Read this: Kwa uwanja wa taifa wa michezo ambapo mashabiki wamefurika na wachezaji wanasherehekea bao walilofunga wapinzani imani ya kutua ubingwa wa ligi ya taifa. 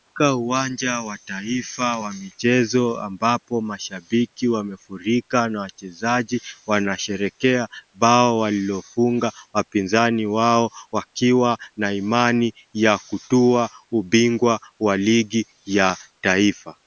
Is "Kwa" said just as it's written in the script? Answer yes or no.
no